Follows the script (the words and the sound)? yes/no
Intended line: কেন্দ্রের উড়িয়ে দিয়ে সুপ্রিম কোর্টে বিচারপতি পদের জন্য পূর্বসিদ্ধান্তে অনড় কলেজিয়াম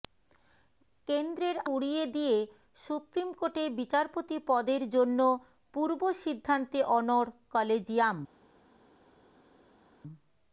yes